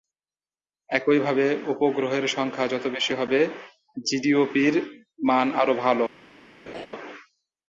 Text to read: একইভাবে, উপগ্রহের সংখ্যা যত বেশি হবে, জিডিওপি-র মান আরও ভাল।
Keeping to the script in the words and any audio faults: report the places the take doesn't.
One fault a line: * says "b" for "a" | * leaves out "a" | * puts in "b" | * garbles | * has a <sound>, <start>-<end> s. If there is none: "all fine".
* has a laugh, 6.7-6.9 s